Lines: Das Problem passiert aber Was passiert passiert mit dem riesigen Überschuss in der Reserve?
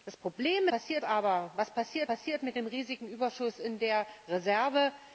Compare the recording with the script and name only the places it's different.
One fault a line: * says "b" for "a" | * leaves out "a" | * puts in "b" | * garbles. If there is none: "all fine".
all fine